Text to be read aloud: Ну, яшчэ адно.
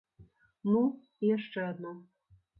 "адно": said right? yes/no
yes